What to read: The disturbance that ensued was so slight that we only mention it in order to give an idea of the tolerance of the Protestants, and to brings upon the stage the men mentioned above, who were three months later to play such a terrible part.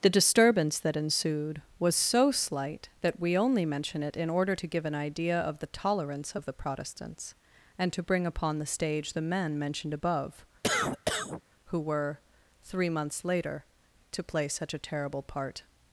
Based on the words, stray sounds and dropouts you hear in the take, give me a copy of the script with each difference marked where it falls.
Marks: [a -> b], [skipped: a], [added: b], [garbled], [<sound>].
The disturbance that ensued was so slight that we only mention it in order to give an idea of the tolerance of the Protestants, and to [brings -> bring] upon the stage the men mentioned above, [cough] who were three months later to play such a terrible part.